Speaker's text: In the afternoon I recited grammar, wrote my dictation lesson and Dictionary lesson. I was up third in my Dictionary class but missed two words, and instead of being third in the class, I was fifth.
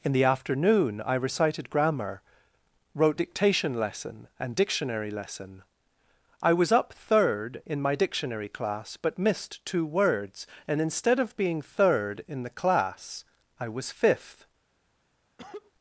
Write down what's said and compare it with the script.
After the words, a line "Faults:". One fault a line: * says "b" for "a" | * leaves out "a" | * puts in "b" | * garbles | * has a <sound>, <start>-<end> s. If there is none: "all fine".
In the afternoon I recited grammar, wrote dictation lesson and Dictionary lesson. I was up third in my Dictionary class but missed two words, and instead of being third in the class, I was fifth.
Faults:
* leaves out "my"
* has a cough, 15.4-15.7 s